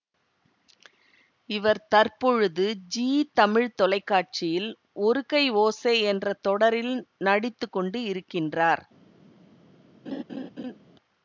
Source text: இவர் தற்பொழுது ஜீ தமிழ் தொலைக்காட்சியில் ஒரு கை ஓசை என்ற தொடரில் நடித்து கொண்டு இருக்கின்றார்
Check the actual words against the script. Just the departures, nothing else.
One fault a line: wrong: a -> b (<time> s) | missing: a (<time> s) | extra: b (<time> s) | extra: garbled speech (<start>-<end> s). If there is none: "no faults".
no faults